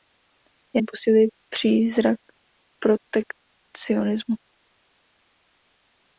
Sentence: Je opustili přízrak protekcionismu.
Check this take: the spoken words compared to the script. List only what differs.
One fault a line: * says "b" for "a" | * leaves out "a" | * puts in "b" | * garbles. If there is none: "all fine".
all fine